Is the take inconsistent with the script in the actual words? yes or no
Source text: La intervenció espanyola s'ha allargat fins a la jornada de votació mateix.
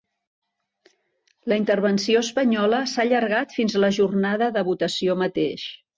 no